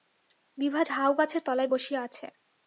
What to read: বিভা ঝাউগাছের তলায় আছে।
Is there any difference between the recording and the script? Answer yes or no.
yes